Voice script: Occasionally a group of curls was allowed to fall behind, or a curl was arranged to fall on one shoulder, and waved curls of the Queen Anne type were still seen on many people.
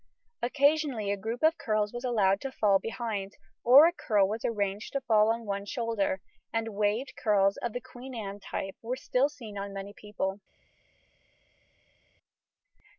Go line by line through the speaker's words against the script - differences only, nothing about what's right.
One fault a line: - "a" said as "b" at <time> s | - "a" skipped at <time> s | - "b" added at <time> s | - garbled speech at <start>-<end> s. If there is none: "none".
none